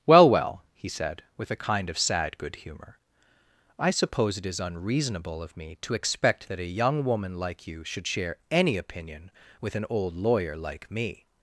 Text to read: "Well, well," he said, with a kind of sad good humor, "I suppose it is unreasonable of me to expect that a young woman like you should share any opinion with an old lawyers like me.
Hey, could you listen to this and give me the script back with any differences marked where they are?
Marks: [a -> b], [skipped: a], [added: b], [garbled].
"Well, well," he said, with a kind of sad good humor, "I suppose it is unreasonable of me to expect that a young woman like you should share any opinion with an old [lawyers -> lawyer] like me.